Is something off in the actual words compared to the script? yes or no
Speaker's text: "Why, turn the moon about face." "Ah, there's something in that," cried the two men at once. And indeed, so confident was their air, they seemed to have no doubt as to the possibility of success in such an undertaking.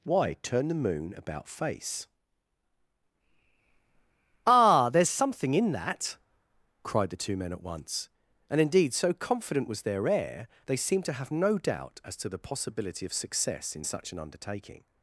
no